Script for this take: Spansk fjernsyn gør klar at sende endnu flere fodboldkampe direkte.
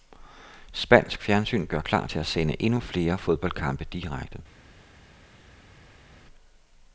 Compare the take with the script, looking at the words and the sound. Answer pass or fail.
fail